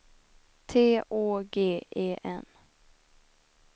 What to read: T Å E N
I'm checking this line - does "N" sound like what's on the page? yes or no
yes